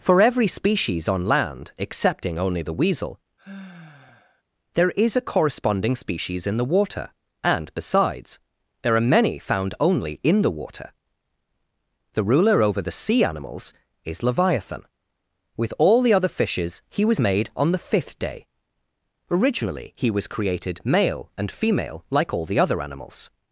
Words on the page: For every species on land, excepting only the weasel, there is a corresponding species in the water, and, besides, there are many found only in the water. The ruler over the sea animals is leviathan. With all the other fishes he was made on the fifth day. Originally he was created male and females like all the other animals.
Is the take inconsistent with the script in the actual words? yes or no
yes